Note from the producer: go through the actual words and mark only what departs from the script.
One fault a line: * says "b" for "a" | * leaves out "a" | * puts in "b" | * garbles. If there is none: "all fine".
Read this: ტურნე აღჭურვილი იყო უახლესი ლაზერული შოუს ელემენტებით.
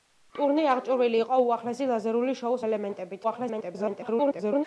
* garbles